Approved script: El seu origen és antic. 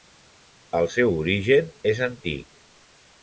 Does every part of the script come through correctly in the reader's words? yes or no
yes